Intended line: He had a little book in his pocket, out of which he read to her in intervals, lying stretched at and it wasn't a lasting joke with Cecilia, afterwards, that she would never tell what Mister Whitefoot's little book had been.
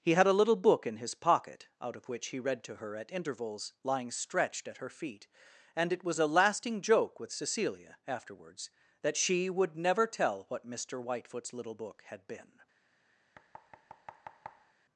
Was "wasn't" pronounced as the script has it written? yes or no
no